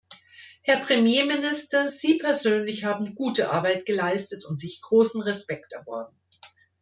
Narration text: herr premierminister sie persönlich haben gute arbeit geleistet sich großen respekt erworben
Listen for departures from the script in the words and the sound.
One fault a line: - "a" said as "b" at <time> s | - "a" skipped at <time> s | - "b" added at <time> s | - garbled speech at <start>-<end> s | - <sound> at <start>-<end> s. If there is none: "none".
- "und" added at 4.4 s